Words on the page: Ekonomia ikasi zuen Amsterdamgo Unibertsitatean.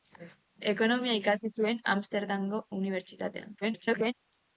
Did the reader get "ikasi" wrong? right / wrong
right